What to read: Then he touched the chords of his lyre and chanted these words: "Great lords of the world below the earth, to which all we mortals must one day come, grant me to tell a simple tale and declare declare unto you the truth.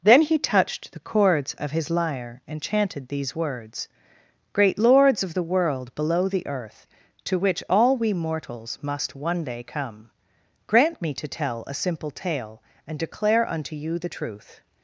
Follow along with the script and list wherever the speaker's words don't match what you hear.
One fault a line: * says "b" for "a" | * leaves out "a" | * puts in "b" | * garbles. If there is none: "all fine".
* leaves out "declare"